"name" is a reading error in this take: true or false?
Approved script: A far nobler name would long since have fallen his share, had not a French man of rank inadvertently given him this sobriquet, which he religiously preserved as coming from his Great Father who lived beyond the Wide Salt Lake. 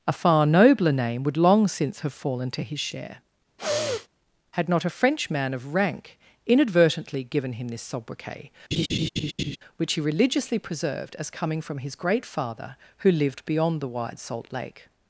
false